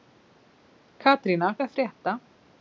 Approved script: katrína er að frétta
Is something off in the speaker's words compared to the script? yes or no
no